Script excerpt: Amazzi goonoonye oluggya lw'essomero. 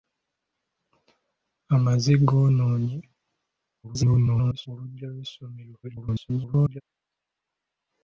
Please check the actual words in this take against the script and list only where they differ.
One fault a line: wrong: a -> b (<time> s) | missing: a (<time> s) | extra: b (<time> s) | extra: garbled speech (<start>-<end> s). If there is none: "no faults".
extra: garbled speech (3.8-4.7 s)
extra: garbled speech (5.8-6.8 s)